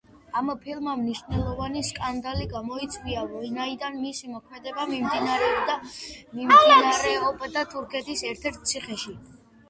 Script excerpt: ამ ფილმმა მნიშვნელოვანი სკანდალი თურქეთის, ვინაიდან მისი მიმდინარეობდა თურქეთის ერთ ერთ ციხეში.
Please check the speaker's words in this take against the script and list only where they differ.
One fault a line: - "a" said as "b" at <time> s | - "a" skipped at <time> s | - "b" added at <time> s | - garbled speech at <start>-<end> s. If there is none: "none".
- "თურქეთის" said as "გამოიწვია" at 2.5 s
- "მოქმედება" added at 4.3 s